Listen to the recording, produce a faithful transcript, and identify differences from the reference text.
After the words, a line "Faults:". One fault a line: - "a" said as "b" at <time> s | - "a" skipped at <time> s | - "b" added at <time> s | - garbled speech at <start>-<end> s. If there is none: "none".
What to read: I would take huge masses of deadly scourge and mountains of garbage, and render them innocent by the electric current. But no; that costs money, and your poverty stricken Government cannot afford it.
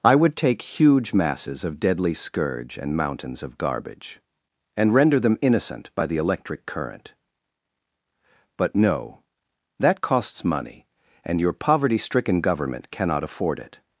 I would take huge masses of deadly scourge and mountains of garbage, and render them innocent by the electric current. But no; that costs money, and your poverty stricken Government cannot afford it.
Faults:
none